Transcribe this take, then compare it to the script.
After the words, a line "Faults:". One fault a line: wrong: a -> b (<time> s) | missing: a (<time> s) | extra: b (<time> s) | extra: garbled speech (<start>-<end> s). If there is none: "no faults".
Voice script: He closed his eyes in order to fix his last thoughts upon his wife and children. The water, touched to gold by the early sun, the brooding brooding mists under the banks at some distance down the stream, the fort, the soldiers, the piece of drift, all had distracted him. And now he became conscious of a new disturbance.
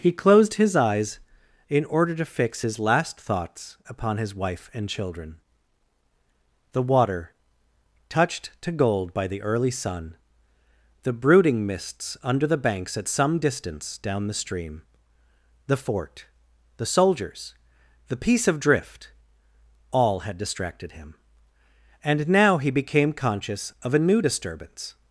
He closed his eyes in order to fix his last thoughts upon his wife and children. The water, touched to gold by the early sun, the brooding mists under the banks at some distance down the stream, the fort, the soldiers, the piece of drift, all had distracted him. And now he became conscious of a new disturbance.
Faults:
missing: brooding (11.7 s)